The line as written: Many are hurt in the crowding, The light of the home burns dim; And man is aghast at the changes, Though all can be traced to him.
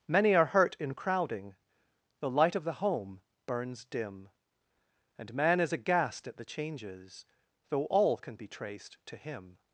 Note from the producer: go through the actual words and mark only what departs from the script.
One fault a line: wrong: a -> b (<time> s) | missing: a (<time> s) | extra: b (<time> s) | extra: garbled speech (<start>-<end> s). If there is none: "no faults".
missing: the (0.9 s)